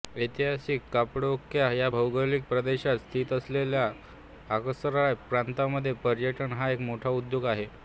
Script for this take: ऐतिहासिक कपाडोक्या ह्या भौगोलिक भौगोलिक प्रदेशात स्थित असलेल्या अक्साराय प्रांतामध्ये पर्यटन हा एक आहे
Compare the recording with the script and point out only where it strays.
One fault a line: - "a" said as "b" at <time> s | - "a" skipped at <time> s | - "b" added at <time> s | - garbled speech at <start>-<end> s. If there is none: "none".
- "भौगोलिक" skipped at 2.4 s
- "मोठा उद्योग" added at 6.8 s